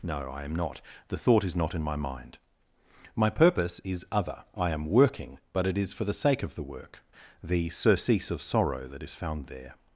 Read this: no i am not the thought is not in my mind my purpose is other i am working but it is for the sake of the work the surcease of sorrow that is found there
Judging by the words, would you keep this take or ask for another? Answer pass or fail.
pass